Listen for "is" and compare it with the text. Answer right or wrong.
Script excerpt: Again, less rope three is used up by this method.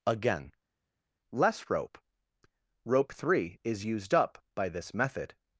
right